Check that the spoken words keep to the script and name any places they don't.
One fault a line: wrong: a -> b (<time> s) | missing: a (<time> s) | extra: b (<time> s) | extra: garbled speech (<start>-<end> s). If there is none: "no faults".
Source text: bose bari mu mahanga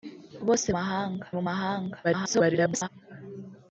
wrong: bari -> mahanga (0.8 s)
extra: garbled speech (2.0-2.9 s)